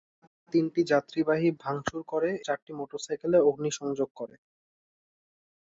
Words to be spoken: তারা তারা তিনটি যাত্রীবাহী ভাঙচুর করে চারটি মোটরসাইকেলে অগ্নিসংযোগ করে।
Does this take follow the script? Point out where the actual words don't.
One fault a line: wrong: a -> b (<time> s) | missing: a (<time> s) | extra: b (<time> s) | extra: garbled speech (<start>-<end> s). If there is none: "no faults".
no faults